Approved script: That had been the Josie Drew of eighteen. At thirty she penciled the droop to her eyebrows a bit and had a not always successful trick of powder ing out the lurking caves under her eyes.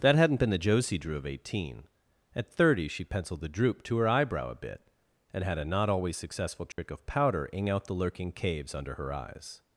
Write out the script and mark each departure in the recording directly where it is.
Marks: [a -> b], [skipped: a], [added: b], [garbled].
That [had -> hadn't] been the Josie Drew of eighteen. At thirty she penciled the droop to her [eyebrows -> eyebrow] a bit and had a not always successful trick of powder ing out the lurking caves under her eyes.